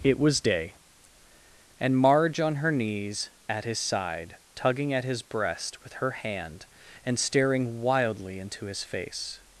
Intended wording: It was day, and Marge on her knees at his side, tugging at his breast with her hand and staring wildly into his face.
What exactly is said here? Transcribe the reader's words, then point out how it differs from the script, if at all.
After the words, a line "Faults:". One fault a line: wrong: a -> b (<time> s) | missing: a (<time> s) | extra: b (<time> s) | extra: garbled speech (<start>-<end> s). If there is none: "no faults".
It was day, and Marge on her knees at his side, tugging at his breast with her hand and staring wildly into his face.
Faults:
no faults